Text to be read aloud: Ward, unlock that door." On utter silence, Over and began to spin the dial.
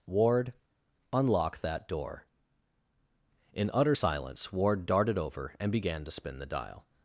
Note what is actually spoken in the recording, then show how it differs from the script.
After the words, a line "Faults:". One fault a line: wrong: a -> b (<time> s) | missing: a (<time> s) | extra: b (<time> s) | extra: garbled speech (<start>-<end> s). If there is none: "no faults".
Ward, unlock that door." In utter silence, Ward darted over and began to spin the dial.
Faults:
wrong: On -> In (3.5 s)
extra: Ward darted (4.5 s)